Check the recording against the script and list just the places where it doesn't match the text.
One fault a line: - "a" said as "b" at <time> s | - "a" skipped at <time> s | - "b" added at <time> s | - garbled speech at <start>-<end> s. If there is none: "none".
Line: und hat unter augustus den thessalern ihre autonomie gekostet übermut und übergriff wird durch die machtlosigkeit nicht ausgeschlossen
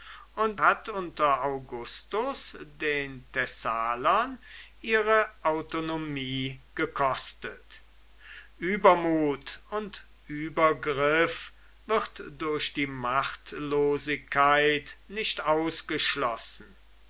none